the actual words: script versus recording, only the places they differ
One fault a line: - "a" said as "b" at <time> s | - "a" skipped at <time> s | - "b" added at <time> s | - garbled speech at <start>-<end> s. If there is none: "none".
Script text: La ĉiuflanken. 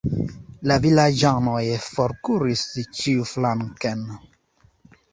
- "vilaĝanoj forkuris" added at 0.9 s